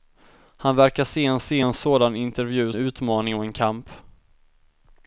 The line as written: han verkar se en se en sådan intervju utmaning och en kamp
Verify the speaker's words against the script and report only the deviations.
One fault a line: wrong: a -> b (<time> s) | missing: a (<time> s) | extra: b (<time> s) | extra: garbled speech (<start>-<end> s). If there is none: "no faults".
no faults